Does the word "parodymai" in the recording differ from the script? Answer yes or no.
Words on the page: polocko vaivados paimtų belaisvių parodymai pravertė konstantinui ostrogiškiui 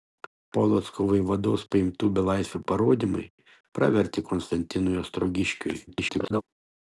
no